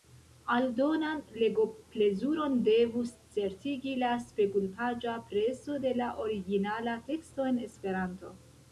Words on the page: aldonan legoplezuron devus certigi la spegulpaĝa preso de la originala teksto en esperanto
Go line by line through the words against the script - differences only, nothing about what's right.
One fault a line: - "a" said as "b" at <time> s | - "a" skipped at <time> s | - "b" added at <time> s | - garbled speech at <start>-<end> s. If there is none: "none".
none